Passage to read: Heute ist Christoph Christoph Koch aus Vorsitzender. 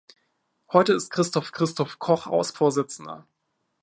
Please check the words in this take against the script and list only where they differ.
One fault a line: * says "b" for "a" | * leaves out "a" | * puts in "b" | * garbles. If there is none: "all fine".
all fine